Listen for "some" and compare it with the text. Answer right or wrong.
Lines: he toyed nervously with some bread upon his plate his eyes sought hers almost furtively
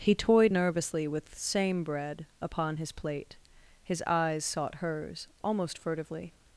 wrong